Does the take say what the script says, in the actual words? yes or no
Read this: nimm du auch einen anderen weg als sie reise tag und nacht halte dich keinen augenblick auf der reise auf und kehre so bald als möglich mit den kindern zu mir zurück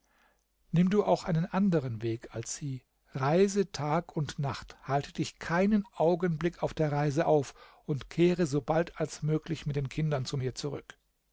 yes